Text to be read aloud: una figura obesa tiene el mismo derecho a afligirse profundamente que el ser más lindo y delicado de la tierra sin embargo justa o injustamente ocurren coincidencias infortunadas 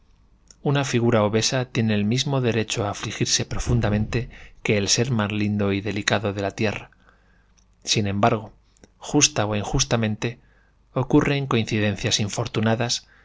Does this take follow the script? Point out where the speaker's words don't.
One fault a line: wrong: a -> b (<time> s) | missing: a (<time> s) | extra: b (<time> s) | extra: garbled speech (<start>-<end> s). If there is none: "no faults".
no faults